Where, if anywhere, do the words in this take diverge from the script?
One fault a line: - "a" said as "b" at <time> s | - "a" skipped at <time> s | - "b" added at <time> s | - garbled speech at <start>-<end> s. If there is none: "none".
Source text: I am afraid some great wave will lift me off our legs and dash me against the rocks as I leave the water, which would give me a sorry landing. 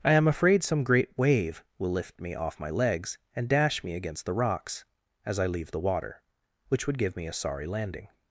- "our" said as "my" at 2.6 s